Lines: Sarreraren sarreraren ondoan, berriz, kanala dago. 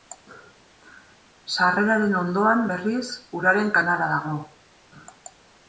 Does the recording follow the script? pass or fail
fail